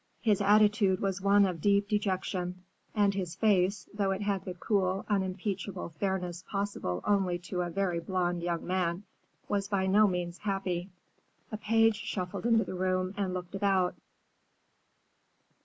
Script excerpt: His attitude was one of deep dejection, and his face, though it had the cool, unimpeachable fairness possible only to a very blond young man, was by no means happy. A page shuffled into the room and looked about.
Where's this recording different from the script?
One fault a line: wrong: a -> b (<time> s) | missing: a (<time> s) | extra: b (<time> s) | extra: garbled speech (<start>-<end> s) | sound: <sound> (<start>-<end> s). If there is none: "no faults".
no faults